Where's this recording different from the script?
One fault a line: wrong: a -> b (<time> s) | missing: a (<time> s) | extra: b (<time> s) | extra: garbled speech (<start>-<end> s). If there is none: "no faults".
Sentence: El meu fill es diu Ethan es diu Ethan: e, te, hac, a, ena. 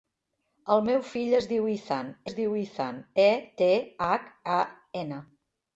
no faults